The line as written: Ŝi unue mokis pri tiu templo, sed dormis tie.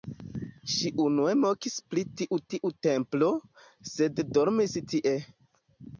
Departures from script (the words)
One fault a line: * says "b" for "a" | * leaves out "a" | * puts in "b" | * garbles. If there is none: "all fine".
* puts in "tiu"